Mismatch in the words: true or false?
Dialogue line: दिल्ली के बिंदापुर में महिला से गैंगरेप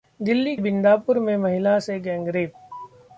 true